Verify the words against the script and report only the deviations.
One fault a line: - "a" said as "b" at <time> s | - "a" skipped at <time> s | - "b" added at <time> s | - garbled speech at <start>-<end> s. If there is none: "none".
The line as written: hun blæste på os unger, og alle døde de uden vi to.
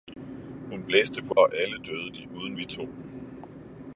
- "os unger" skipped at 1.4 s